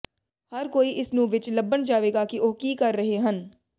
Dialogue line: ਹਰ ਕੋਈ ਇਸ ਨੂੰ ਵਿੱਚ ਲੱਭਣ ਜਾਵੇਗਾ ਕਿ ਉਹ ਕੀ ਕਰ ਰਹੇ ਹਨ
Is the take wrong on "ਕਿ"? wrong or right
right